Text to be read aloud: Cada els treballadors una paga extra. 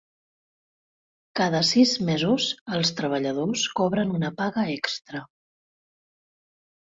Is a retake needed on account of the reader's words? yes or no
yes